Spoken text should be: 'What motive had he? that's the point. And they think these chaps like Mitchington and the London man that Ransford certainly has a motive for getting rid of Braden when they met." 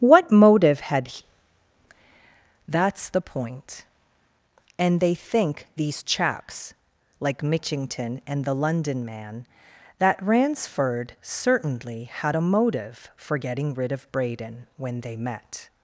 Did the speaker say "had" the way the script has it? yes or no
yes